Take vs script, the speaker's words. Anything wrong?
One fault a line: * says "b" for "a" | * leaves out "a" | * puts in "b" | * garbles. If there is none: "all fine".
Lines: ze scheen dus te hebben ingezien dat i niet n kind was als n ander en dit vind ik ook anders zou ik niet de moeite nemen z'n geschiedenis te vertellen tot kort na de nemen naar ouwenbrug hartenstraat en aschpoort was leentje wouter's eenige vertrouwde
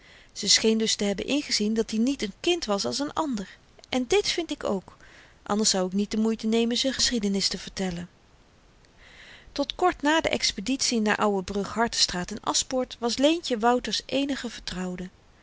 * says "expeditie" for "nemen"